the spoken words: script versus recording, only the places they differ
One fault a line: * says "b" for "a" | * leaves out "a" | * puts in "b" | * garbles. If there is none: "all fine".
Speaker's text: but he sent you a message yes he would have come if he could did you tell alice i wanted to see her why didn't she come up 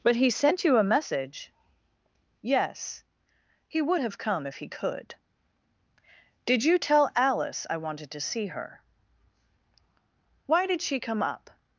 * says "did" for "didn't"